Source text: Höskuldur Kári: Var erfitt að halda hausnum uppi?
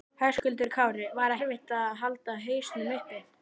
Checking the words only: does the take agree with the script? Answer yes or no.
yes